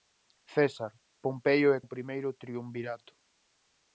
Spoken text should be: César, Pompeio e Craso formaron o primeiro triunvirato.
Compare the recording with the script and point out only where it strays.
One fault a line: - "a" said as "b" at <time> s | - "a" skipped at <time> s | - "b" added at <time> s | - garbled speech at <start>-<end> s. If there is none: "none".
- "Craso formaron" skipped at 1.8 s